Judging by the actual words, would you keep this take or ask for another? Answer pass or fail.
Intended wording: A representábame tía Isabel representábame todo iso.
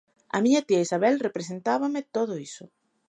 fail